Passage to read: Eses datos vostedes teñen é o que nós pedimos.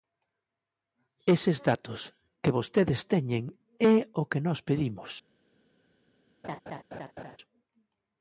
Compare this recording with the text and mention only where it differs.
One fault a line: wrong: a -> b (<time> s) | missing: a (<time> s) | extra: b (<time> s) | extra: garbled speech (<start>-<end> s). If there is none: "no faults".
extra: que (2.4 s)